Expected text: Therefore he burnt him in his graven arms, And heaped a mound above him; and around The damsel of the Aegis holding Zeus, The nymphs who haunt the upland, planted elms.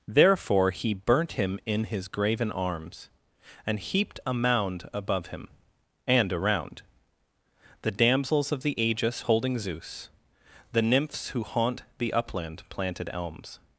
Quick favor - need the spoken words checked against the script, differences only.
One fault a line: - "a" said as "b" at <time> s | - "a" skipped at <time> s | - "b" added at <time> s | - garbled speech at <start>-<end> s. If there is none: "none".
- "damsel" said as "damsels" at 7.9 s